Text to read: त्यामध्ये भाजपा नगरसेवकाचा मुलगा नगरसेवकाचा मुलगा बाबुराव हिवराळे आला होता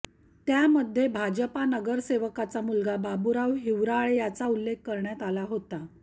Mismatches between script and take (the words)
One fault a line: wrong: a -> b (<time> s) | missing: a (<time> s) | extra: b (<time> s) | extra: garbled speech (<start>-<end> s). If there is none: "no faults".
wrong: नगरसेवकाचा मुलगा बाबुराव हिवराळे -> बाबुराव हिवराळे याचा उल्लेख करण्यात (3.0 s)